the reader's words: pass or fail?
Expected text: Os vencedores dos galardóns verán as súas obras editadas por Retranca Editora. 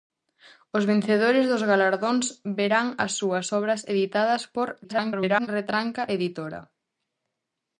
fail